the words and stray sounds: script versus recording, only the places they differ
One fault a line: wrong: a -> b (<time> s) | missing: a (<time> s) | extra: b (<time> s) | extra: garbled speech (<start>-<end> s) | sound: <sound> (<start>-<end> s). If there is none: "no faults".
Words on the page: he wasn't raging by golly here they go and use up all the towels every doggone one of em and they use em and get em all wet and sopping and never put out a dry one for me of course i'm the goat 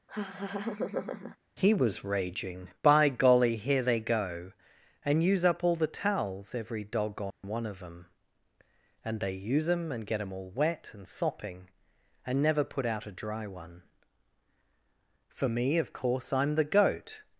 sound: laugh (0.1-1.4 s)
wrong: wasn't -> was (1.7 s)
sound: dropout (7.3-7.4 s)